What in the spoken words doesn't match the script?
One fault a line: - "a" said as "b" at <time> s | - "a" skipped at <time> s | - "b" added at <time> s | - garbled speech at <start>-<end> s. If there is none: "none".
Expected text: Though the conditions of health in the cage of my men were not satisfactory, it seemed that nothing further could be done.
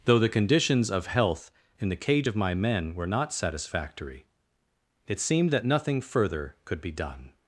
none